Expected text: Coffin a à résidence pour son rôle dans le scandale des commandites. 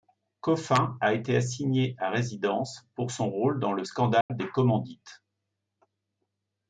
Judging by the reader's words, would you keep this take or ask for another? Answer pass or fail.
fail